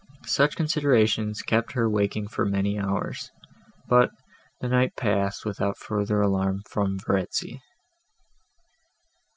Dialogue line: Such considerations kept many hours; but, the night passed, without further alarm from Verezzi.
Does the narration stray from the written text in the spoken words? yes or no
yes